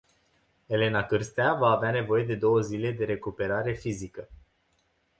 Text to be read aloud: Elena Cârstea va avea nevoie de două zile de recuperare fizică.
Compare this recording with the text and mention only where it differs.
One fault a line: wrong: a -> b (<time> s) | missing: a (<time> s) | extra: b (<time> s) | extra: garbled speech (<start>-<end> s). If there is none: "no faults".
no faults